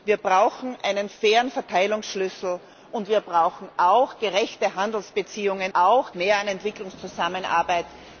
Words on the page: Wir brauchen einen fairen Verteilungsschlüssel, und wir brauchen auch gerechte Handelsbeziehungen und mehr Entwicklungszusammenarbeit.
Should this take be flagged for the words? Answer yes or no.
yes